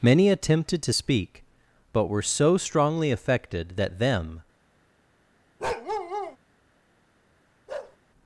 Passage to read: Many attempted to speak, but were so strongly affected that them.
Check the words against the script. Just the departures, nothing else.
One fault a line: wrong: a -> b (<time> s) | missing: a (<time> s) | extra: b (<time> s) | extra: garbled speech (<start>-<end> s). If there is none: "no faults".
no faults